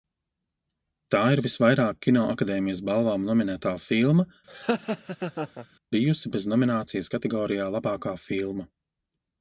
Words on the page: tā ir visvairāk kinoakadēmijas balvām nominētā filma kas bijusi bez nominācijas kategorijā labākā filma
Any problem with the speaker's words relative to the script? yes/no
yes